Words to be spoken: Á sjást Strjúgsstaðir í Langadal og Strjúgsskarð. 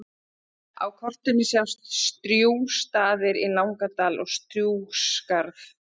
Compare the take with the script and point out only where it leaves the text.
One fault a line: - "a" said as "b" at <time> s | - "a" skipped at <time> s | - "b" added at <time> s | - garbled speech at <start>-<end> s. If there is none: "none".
- "kortinu" added at 1.0 s